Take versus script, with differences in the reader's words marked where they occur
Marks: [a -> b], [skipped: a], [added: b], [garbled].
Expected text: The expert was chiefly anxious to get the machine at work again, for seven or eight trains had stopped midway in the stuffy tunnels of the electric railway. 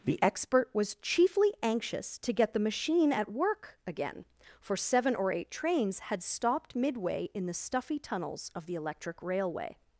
The expert was chiefly anxious to get the machine at work again, for seven or eight trains had stopped midway in the stuffy tunnels of the electric railway.